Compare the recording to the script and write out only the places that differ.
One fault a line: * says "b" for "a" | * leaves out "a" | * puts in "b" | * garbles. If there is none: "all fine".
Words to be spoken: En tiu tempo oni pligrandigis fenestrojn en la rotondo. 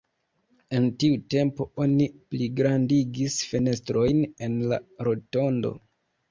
all fine